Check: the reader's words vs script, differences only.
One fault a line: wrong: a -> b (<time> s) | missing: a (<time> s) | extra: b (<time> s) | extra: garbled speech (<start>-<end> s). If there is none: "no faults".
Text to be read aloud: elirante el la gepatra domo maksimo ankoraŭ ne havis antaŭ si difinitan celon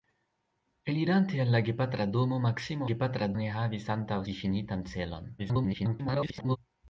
wrong: ankoraŭ -> gepatra (2.9 s)
missing: si (4.2 s)
extra: garbled speech (5.4-6.6 s)